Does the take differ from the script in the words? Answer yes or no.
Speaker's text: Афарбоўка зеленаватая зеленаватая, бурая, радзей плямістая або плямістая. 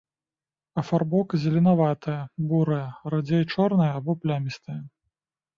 yes